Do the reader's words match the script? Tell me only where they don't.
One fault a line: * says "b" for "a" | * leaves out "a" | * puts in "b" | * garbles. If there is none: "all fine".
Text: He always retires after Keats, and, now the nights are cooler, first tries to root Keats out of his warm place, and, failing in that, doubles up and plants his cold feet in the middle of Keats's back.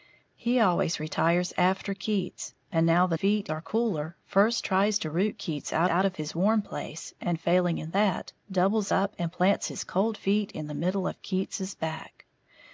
* says "feet" for "nights"
* puts in "out"